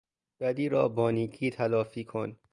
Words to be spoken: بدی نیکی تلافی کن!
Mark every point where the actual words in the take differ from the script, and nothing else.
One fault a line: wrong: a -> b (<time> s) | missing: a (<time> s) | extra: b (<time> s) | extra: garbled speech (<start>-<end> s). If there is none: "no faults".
extra: را با (0.7 s)